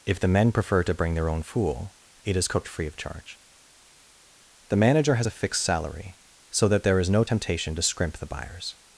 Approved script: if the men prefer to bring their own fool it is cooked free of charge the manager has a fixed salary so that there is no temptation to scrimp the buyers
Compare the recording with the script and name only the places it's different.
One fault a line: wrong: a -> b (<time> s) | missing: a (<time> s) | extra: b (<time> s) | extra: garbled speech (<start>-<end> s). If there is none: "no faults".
no faults